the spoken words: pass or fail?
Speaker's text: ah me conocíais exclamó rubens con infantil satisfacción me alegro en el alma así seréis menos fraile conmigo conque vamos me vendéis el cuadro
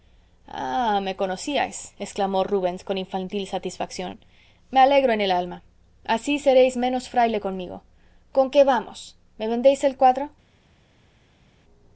pass